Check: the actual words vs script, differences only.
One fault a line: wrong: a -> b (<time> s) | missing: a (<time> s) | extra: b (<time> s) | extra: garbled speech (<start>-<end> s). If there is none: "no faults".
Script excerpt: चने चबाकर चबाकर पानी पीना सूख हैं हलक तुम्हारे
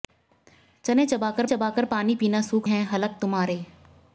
no faults